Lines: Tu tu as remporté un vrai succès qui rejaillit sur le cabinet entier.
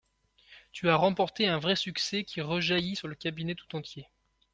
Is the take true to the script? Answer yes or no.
no